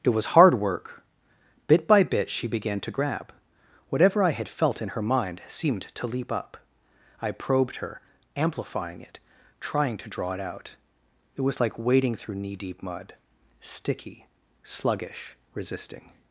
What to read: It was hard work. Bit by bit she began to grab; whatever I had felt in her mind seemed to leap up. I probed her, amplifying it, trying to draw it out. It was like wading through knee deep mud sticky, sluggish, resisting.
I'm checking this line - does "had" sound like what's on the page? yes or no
yes